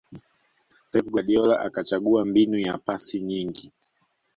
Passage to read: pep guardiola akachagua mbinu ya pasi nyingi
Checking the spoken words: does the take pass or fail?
pass